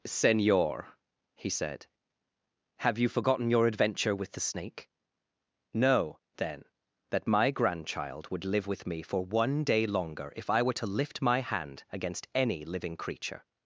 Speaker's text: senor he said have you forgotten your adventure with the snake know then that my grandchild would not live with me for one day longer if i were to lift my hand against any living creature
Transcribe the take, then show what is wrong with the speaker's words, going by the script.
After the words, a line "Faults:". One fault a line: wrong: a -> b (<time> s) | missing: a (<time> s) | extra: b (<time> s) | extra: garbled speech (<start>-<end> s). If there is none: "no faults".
senor he said have you forgotten your adventure with the snake know then that my grandchild would live with me for one day longer if i were to lift my hand against any living creature
Faults:
missing: not (8.4 s)